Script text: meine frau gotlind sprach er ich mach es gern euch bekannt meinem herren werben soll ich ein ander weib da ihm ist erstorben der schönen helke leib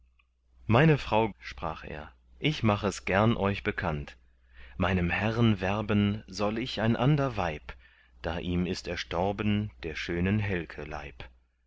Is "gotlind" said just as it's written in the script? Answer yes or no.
no